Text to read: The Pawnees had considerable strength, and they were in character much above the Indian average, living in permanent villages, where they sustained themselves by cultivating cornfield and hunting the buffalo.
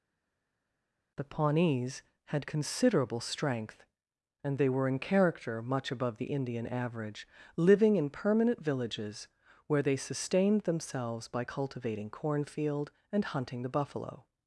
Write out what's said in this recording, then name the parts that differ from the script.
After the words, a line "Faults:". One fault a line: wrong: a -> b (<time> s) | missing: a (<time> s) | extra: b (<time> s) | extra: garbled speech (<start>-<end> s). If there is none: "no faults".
The Pawnees had considerable strength, and they were in character much above the Indian average, living in permanent villages, where they sustained themselves by cultivating cornfield and hunting the buffalo.
Faults:
no faults